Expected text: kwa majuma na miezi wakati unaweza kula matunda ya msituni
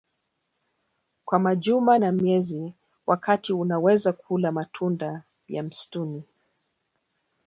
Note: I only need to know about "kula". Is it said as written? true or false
true